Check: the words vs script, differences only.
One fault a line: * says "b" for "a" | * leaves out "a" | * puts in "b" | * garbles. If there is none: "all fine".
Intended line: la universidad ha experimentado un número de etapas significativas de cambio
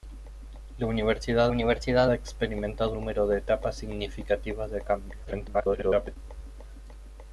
* puts in "universidad"
* leaves out "un"
* garbles